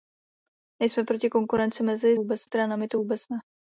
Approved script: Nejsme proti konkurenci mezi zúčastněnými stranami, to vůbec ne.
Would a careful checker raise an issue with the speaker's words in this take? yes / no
yes